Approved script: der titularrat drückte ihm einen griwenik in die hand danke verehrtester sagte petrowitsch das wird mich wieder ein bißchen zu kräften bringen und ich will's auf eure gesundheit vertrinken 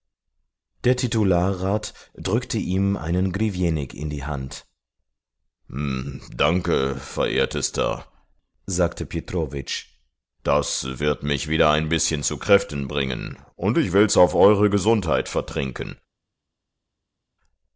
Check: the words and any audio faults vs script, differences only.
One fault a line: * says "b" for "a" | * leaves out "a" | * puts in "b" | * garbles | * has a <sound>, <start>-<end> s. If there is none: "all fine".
all fine